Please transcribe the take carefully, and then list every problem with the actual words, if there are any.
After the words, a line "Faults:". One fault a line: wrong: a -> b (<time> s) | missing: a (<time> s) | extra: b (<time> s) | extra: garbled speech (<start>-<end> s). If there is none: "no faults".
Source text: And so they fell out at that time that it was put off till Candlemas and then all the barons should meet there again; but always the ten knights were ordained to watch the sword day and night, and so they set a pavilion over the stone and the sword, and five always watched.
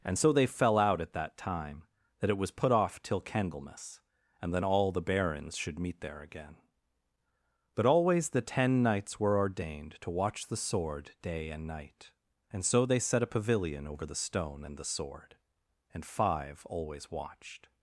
And so they fell out at that time that it was put off till Candlemas and then all the barons should meet there again; but always the ten knights were ordained to watch the sword day and night, and so they set a pavilion over the stone and the sword, and five always watched.
Faults:
no faults